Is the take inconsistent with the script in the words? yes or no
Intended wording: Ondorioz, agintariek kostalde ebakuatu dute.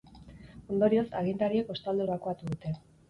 no